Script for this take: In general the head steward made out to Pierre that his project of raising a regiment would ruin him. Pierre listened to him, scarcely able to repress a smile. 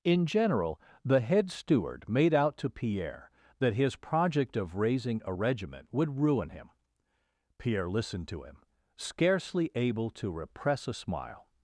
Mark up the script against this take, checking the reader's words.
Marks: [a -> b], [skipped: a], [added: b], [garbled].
In general the head steward made out to Pierre that his project of raising a regiment would ruin him. Pierre listened to him, scarcely able to repress a smile.